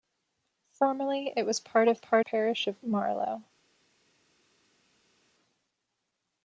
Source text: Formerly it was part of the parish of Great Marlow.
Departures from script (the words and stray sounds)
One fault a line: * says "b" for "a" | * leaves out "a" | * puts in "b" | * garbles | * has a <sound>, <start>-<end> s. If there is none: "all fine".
* says "part" for "the"
* leaves out "Great"